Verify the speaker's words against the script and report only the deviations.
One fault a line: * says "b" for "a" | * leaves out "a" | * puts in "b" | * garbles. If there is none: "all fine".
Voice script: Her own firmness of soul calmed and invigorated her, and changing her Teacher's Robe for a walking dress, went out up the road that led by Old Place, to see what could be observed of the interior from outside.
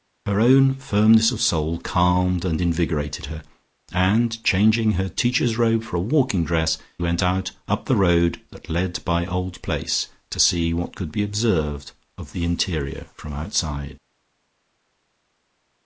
all fine